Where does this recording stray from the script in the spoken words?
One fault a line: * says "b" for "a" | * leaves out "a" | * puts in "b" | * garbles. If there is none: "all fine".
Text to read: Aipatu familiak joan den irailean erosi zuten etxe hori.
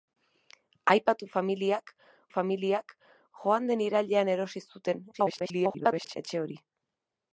* puts in "familiak"
* garbles